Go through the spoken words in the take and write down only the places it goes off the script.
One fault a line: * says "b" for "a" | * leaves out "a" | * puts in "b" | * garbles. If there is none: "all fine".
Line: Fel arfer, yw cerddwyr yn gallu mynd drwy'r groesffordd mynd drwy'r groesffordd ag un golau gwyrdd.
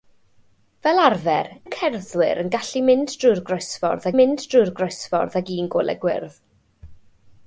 all fine